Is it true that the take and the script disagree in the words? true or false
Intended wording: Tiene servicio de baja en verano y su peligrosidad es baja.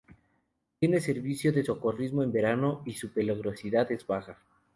true